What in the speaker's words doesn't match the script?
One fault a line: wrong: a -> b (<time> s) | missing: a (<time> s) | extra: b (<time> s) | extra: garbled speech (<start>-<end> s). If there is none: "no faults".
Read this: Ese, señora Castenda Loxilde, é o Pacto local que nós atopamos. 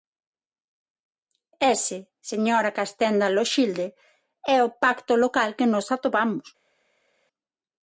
no faults